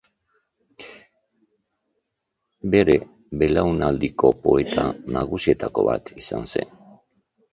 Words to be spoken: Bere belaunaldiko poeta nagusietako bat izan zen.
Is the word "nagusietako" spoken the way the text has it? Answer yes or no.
yes